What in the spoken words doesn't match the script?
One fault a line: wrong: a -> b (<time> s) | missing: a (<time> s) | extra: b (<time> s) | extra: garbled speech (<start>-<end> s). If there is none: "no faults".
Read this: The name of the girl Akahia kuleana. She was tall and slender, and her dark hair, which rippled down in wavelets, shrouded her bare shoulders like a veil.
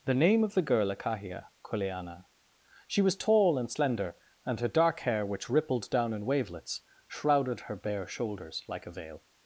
no faults